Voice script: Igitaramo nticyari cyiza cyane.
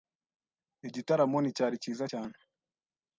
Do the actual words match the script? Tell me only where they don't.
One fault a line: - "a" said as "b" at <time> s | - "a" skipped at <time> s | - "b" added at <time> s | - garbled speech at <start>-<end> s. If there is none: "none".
none